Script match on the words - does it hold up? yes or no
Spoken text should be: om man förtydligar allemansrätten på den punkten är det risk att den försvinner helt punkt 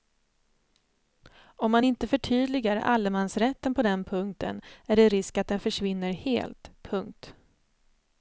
no